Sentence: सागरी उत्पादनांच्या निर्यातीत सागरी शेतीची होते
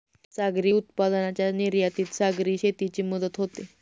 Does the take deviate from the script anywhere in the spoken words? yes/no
yes